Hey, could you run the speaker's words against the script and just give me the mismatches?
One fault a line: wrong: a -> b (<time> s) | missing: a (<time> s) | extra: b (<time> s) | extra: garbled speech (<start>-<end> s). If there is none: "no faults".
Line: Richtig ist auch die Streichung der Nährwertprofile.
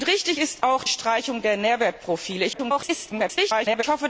missing: die (0.8 s)
extra: garbled speech (2.5-3.8 s)